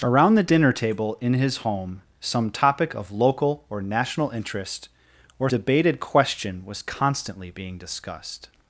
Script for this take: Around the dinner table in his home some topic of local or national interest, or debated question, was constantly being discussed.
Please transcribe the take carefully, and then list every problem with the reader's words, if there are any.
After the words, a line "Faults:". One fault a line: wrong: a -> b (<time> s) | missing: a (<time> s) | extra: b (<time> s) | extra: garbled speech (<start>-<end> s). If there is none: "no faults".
Around the dinner table in his home some topic of local or national interest, or debated question, was constantly being discussed.
Faults:
no faults